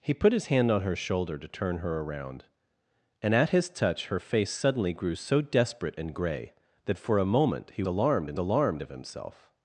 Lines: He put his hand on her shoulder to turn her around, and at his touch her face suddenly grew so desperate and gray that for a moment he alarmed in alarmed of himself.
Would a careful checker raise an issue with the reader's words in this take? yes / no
no